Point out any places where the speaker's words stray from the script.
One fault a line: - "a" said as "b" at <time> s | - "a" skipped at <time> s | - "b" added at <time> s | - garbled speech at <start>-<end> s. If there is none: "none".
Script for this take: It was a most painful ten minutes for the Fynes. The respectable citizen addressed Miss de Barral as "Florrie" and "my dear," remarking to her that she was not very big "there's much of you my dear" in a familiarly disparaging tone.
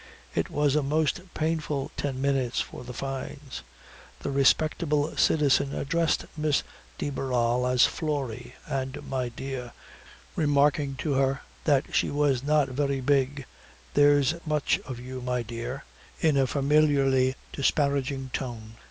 none